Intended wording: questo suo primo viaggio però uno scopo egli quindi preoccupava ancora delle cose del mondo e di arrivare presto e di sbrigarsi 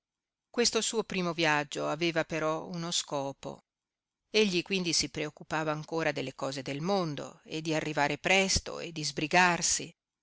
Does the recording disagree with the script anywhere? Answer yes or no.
yes